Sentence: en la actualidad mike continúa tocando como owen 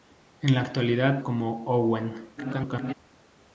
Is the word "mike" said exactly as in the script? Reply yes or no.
no